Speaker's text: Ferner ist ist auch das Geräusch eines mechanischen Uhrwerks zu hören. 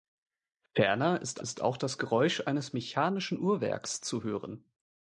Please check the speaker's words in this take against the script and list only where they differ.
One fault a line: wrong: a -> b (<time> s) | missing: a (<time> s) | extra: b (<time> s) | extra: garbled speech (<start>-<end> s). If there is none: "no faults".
no faults